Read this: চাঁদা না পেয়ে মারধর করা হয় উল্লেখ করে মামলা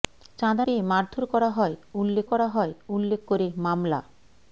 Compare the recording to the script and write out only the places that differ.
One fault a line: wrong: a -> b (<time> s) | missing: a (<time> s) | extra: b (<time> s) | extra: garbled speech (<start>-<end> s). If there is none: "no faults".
missing: না (0.7 s)
extra: করা হয় উল্লেখ (2.3 s)